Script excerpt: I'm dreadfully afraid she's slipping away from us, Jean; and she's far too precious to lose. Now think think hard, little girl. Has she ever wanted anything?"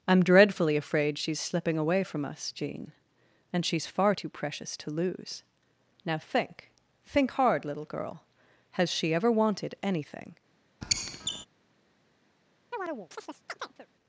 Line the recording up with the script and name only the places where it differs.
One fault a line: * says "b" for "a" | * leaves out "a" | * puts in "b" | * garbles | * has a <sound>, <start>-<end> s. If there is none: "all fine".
* has a squeak, 10.8-11.5 s
* has a chirp, 12.7-13.9 s